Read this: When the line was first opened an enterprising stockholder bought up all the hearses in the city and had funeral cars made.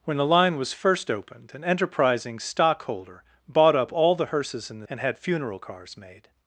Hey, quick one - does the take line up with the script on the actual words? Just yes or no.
no